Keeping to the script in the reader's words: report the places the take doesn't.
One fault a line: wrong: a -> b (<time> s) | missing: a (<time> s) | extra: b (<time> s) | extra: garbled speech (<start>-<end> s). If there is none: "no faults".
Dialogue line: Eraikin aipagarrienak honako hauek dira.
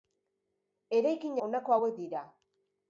missing: aipagarrienak (1.4 s)